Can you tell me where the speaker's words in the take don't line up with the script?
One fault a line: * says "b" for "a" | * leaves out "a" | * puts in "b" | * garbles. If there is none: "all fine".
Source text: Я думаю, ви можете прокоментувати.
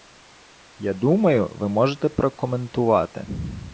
all fine